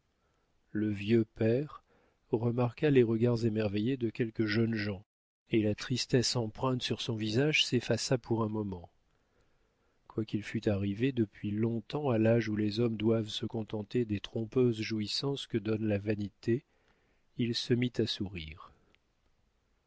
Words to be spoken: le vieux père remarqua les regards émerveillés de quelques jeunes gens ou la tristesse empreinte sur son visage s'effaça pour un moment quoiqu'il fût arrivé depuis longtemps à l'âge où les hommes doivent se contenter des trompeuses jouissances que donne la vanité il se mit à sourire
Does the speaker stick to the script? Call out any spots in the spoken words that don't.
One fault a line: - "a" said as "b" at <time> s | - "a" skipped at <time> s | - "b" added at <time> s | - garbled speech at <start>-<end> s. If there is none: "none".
- "ou" said as "et" at 5.5 s